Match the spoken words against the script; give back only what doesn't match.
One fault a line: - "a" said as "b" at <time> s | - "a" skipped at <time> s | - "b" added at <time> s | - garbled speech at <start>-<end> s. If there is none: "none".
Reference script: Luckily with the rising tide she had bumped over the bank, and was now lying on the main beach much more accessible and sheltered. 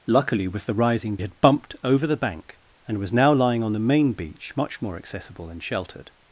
- "tide she" skipped at 1.2 s